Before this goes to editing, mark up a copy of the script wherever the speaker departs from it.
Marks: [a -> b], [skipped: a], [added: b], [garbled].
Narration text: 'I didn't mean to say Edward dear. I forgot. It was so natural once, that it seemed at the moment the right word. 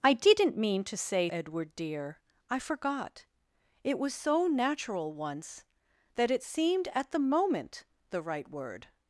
'I didn't mean to say Edward dear. I forgot. It was so natural once, that it seemed at the moment the right word.